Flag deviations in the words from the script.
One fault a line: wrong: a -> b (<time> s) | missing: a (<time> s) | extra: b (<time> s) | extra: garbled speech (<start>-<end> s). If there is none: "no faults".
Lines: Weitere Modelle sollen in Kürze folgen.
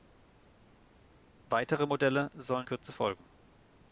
missing: in (2.7 s)